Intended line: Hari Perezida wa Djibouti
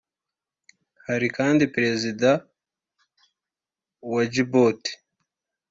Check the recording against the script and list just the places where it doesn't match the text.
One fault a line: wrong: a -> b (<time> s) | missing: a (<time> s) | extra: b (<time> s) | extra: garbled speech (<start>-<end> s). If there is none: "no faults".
extra: kandi (1.3 s)